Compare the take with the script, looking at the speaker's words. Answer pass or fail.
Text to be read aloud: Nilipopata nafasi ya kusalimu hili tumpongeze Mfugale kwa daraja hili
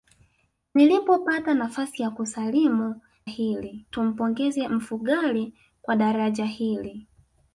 pass